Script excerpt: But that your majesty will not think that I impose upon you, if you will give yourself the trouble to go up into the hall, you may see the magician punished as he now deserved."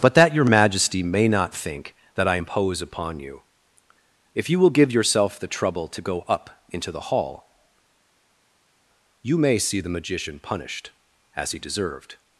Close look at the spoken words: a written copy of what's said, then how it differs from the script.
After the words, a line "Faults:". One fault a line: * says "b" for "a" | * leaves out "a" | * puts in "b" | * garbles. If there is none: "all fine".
But that your majesty may not think that I impose upon you, if you will give yourself the trouble to go up into the hall, you may see the magician punished as he deserved."
Faults:
* says "may" for "will"
* leaves out "now"